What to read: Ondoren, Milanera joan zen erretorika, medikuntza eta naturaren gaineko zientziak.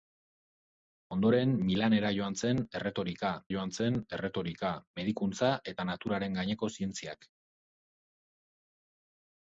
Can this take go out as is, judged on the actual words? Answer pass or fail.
fail